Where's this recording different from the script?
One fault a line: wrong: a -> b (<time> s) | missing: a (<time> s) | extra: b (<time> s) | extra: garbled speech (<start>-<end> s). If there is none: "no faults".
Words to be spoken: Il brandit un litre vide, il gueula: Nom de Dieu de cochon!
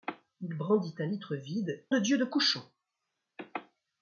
missing: il gueula Nom (1.9 s)